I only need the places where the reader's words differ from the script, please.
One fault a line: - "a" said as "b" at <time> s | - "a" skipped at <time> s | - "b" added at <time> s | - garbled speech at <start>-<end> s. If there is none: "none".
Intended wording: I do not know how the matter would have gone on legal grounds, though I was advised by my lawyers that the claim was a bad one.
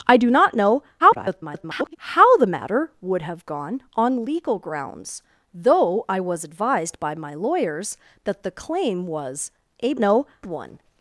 - garbled speech at 1.0-2.0 s
- "bad" said as "know" at 10.0 s